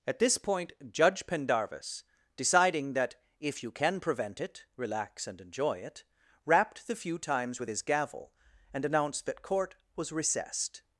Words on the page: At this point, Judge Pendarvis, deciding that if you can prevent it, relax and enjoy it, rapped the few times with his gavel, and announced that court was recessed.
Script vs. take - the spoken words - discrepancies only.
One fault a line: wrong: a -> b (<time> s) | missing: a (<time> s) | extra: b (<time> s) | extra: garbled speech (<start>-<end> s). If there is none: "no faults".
no faults